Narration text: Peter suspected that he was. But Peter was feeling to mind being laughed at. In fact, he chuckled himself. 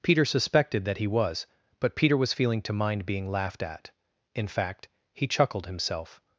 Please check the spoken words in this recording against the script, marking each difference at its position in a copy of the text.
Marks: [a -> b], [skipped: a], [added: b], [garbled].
Peter suspected that he was. But Peter was feeling to mind being laughed at. In fact, he chuckled himself.